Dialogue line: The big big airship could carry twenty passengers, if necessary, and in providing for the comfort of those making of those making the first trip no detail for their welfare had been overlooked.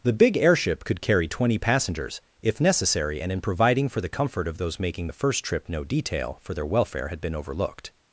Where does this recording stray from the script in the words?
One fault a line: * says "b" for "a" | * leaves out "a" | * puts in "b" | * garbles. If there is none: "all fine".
* leaves out "big"
* leaves out "of those making"